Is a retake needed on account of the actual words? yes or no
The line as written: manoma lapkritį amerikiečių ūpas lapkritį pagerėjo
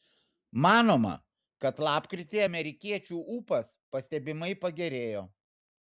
yes